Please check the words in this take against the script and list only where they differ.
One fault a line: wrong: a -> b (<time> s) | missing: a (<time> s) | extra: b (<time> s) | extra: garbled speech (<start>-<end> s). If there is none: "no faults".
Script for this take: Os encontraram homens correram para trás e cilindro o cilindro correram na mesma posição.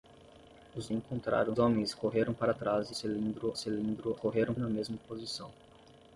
no faults